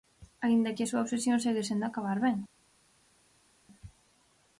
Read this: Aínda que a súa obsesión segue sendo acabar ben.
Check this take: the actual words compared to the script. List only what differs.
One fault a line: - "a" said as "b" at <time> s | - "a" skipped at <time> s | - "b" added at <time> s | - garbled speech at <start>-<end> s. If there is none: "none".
none